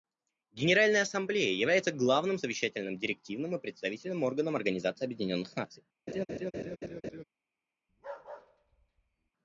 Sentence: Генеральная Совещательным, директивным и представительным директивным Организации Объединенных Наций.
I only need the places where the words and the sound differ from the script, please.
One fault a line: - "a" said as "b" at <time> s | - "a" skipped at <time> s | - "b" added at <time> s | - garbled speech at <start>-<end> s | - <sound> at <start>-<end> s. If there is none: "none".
- "Ассамблея является главным" added at 1.0 s
- "директивным" said as "органом" at 4.2 s
- laugh at 6.1-7.2 s
- bark at 7.9-9.3 s